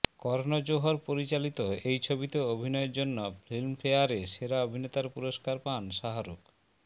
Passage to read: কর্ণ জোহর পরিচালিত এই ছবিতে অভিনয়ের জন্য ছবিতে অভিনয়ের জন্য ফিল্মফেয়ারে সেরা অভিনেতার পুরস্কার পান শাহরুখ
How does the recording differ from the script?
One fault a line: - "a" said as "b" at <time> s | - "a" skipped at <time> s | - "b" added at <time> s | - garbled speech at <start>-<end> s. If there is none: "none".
- "ছবিতে অভিনয়ের জন্য" skipped at 3.2 s